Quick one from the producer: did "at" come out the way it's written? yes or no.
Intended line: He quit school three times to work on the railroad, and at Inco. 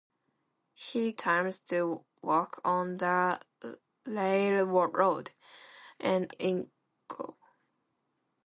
no